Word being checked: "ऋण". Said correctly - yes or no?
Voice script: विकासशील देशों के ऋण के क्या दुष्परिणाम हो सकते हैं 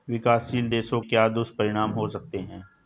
no